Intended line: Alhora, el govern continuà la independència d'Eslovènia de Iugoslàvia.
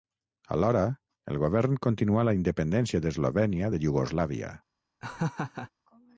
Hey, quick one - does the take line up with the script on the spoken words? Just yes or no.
yes